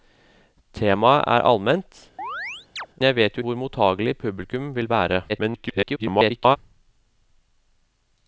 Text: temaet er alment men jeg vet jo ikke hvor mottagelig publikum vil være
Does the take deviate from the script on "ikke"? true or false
true